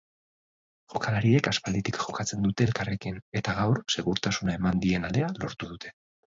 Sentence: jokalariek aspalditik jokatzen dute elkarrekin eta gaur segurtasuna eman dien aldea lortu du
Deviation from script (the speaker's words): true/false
true